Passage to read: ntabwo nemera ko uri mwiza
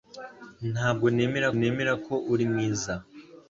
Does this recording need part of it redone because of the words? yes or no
yes